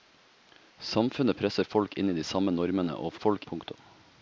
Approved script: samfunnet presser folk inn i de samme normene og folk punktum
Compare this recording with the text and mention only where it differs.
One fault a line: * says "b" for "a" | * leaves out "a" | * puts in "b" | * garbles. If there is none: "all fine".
all fine